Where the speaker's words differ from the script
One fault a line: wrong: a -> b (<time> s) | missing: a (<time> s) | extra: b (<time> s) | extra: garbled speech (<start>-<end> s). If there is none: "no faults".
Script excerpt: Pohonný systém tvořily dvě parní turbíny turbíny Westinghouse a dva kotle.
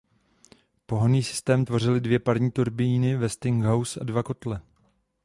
missing: turbíny (3.2 s)